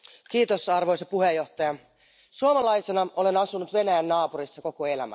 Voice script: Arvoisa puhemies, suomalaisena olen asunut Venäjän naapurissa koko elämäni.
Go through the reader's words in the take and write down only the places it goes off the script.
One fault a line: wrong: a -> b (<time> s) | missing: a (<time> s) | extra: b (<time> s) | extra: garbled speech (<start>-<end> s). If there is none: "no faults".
no faults